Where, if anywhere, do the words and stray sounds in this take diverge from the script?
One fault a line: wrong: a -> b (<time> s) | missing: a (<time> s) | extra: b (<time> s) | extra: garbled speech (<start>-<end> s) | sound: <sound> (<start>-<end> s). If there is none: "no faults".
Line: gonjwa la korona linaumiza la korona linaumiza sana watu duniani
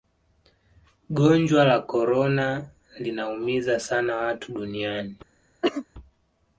missing: la korona linaumiza (3.8 s)
sound: cough (5.6-5.9 s)